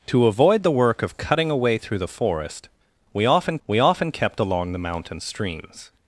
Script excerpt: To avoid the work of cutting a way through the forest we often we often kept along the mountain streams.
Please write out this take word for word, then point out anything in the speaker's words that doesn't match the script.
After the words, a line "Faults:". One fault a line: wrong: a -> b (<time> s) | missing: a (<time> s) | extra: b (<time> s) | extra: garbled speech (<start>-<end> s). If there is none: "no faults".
To avoid the work of cutting a way through the forest we often we often kept along the mountain streams.
Faults:
no faults